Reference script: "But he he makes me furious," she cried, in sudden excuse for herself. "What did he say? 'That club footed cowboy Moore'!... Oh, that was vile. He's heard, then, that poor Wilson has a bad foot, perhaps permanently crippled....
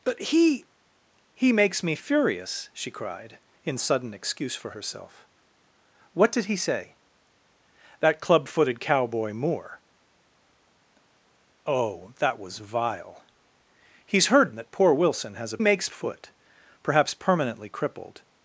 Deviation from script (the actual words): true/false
true